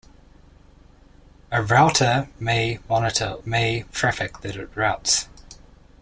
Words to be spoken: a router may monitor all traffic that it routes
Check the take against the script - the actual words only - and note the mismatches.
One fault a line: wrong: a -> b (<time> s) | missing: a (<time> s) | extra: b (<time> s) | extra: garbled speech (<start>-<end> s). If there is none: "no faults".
wrong: all -> may (3.4 s)